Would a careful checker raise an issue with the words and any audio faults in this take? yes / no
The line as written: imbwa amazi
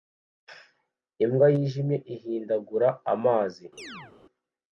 yes